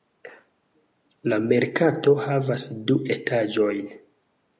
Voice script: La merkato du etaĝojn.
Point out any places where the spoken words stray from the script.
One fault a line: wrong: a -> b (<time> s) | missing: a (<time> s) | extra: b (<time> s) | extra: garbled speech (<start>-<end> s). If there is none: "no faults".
extra: havas (2.2 s)